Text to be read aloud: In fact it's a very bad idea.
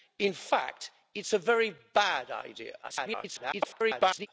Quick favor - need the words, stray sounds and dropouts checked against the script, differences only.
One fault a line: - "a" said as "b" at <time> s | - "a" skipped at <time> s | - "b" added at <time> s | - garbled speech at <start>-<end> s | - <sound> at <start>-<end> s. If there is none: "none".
- garbled speech at 2.8-4.3 s